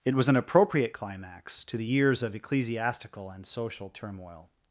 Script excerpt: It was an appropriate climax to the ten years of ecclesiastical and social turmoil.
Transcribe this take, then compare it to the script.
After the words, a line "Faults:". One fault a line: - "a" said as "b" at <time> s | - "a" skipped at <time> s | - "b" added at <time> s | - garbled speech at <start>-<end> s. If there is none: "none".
It was an appropriate climax to the years of ecclesiastical and social turmoil.
Faults:
- "ten" skipped at 1.9 s